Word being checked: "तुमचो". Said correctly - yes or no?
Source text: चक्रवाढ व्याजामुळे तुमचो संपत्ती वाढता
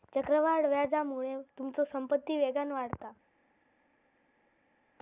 yes